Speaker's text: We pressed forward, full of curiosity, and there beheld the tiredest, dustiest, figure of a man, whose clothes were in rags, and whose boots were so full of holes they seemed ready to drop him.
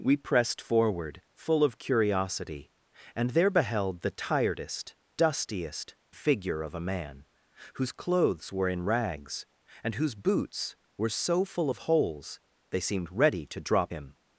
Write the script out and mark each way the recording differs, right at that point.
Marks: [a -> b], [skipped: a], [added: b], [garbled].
We pressed forward, full of curiosity, and there beheld the tiredest, dustiest, figure of a man, whose clothes were in rags, and whose boots were so full of holes they seemed ready to drop him.